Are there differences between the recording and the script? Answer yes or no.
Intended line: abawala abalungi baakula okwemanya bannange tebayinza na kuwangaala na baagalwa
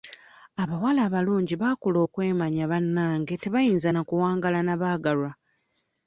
no